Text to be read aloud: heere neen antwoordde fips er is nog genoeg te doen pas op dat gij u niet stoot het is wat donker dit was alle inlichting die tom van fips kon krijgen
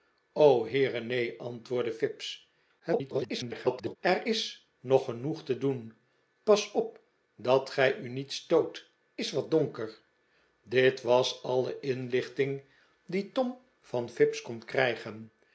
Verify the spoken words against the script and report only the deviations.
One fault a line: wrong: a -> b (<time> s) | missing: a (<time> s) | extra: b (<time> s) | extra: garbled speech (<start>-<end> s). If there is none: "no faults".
extra: garbled speech (2.8-4.0 s)
missing: het (8.9 s)